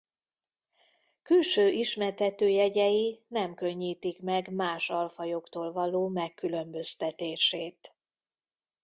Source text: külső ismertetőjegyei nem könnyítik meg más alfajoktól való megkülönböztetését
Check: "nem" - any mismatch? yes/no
no